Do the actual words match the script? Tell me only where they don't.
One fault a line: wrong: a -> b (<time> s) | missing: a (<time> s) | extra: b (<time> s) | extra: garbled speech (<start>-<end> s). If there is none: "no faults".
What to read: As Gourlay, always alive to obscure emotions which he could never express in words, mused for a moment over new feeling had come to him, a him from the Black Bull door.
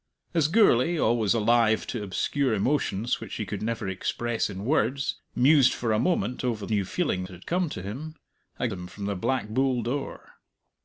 no faults